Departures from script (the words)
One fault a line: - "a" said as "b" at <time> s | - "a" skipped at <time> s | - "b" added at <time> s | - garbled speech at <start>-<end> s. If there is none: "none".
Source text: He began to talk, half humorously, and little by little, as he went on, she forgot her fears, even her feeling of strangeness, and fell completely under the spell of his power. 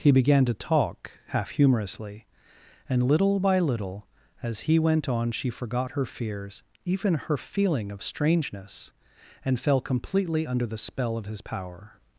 none